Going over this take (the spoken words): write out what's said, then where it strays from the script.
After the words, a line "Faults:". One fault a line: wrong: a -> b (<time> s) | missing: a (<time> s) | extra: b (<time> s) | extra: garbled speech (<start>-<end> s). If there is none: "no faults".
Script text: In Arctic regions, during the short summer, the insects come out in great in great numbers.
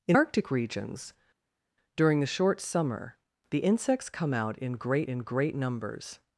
In Arctic regions, during the short summer, the insects come out in great in great numbers.
Faults:
no faults